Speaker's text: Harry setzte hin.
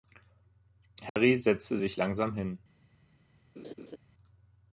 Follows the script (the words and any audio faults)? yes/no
no